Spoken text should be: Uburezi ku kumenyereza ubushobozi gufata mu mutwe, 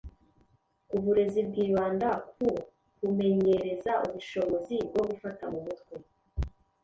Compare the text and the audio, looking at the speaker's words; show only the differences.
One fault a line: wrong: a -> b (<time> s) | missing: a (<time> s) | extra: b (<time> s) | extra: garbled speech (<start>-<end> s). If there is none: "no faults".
extra: bwibanda (1.5 s)
extra: bwo (4.9 s)